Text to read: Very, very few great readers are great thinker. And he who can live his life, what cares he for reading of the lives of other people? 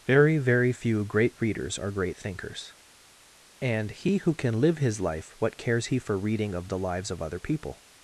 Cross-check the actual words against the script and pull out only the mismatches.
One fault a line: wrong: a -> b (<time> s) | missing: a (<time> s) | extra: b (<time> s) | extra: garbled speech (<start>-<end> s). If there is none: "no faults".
wrong: thinker -> thinkers (2.2 s)